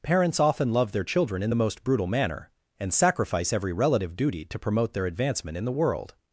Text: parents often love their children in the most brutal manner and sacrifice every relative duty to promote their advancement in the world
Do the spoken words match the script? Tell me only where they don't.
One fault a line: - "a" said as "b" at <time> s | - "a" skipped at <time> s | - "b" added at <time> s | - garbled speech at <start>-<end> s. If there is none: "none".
none